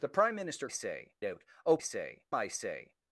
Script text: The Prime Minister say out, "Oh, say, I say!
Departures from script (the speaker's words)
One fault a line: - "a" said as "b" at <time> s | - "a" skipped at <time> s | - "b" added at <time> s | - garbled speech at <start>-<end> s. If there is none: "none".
none